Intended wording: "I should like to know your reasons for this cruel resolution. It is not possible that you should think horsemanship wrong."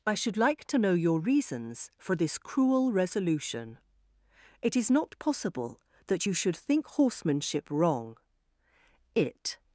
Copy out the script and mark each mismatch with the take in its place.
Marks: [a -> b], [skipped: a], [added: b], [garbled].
"I should like to know your reasons for this cruel resolution. It is not possible that you should think horsemanship wrong." [added: It]